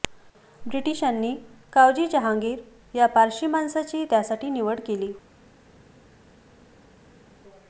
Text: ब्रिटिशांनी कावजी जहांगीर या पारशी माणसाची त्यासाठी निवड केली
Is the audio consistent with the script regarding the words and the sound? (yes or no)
yes